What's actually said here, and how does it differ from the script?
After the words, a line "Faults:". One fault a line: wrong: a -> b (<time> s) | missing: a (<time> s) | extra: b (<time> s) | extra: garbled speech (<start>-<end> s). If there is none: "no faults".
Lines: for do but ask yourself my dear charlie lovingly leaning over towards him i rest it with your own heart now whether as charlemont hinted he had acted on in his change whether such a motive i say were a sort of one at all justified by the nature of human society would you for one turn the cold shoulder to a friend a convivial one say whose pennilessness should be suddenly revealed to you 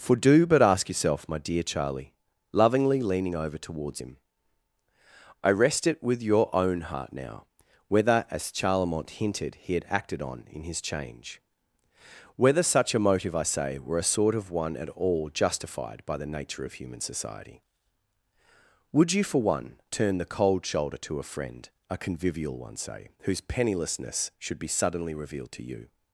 for do but ask yourself my dear charlie lovingly leaning over towards him i rest it with your own heart now whether as charlemont hinted he had acted on in his change whether such a motive i say were a sort of one at all justified by the nature of human society would you for one turn the cold shoulder to a friend a convivial one say whose pennilessness should be suddenly revealed to you
Faults:
no faults